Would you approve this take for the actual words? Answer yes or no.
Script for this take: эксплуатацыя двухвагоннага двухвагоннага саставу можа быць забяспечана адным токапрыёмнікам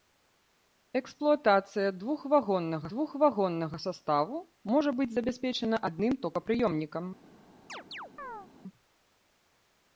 yes